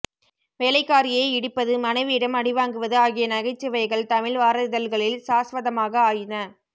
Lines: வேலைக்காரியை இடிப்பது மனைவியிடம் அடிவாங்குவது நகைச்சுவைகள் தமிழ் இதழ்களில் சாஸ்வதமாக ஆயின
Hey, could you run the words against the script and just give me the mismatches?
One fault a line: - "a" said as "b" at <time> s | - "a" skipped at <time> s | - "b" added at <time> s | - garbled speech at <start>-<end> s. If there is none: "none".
- "ஆகிய" added at 3.0 s
- "வார" added at 4.4 s